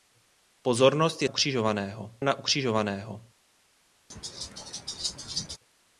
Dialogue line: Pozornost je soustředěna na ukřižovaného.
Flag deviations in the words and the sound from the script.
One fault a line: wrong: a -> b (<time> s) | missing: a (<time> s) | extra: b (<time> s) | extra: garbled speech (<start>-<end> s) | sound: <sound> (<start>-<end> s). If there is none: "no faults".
wrong: soustředěna -> ukřižovaného (1.2 s)
sound: laugh (4.1-5.6 s)